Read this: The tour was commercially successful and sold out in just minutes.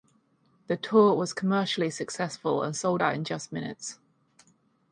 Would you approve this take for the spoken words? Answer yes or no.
yes